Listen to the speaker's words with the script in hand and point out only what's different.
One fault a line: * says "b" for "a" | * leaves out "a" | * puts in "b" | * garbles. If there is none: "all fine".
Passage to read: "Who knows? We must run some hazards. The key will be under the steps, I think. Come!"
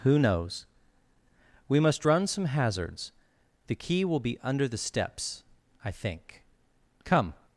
all fine